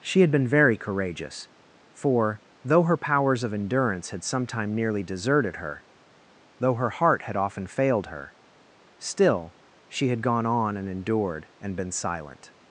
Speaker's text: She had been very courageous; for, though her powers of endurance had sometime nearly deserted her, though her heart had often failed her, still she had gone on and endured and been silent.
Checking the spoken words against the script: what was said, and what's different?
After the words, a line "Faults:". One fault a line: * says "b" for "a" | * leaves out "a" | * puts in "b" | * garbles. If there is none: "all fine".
She had been very courageous; for, though her powers of endurance had sometime nearly deserted her, though her heart had often failed her, still she had gone on and endured and been silent.
Faults:
all fine